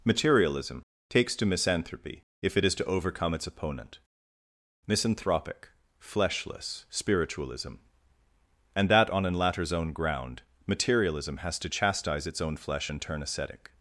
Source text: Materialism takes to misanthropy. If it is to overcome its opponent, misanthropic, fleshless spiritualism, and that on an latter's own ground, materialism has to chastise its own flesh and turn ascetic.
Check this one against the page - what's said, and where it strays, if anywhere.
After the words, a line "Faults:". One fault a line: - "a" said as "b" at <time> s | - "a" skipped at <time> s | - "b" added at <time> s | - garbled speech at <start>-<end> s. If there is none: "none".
Materialism takes to misanthropy. If it is to overcome its opponent, misanthropic, fleshless spiritualism, and that on an latter's own ground, materialism has to chastise its own flesh and turn ascetic.
Faults:
none